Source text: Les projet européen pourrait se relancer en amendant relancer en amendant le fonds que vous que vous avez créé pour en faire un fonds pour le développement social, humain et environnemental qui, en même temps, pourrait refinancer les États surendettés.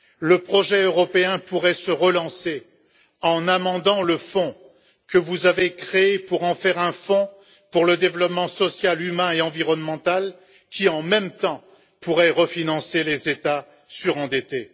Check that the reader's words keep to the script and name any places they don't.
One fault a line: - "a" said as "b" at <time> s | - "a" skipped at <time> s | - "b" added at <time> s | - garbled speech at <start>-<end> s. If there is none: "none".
- "Les" said as "Le" at 0.2 s
- "relancer en amendant" skipped at 4.0 s
- "que vous" skipped at 5.5 s